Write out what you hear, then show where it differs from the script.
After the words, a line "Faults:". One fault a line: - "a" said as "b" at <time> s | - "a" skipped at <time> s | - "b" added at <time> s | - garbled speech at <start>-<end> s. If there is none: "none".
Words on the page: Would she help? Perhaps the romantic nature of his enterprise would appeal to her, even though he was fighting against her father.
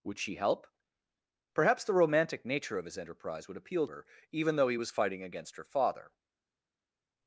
Would she help? Perhaps the romantic nature of his enterprise would appeal her, even though he was fighting against her father.
Faults:
- "to" skipped at 3.9 s